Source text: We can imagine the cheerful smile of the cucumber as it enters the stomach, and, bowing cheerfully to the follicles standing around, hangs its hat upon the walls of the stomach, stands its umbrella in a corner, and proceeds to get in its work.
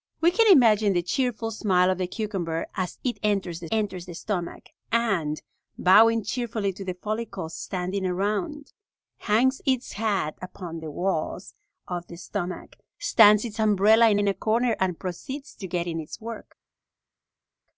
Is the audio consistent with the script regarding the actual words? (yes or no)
no